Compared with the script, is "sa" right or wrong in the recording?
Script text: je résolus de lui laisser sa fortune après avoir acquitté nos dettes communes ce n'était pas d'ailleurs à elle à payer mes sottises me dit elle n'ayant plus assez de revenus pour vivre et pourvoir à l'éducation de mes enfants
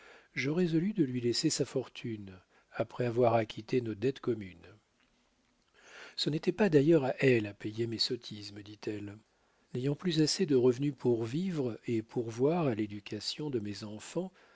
right